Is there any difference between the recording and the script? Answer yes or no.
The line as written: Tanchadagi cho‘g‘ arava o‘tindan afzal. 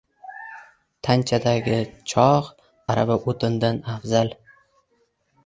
no